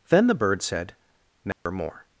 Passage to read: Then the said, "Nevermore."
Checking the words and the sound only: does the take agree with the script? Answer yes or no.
no